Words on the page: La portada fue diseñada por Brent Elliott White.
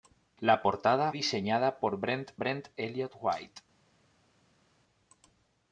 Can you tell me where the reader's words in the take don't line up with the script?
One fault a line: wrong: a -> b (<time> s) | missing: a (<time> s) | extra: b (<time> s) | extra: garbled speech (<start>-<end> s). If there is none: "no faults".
missing: fue (1.1 s)
extra: Brent (2.4 s)